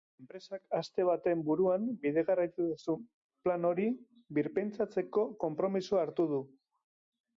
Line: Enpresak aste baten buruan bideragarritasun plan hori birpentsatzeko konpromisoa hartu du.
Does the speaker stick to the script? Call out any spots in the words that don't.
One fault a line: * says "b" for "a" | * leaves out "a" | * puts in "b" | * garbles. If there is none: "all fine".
all fine